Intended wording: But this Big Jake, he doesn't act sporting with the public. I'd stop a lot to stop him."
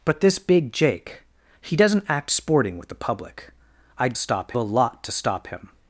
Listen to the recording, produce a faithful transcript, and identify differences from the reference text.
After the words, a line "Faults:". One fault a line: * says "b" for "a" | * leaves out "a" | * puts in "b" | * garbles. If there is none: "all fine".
But this Big Jake, he doesn't act sporting with the public. I'd stop a lot to stop him."
Faults:
all fine